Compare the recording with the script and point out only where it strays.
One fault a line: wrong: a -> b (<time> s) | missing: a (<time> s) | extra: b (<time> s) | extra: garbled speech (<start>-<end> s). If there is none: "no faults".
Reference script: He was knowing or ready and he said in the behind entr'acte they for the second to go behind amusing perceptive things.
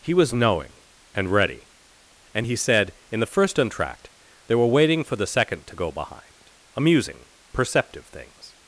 wrong: or -> and (1.1 s)
wrong: behind -> first (3.2 s)
extra: were waiting (4.5 s)